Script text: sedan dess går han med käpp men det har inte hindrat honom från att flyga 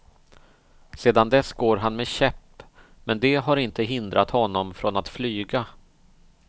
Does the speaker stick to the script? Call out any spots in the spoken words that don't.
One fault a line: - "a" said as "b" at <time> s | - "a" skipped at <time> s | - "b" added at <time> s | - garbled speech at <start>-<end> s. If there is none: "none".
none